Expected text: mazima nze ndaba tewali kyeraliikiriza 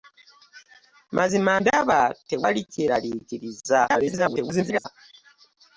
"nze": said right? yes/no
no